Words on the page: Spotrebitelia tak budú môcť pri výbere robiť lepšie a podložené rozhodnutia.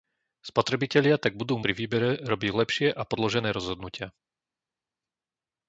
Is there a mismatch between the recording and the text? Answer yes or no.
yes